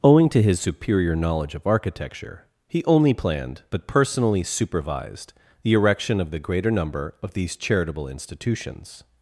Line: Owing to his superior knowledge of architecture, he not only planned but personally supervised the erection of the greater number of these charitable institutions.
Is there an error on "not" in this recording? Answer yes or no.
yes